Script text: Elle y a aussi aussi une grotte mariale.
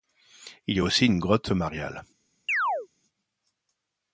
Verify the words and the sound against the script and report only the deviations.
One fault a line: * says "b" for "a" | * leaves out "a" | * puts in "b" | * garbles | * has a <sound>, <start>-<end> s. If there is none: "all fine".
* says "Il" for "Elle"
* leaves out "aussi"
* has a chirp, 2.5-2.9 s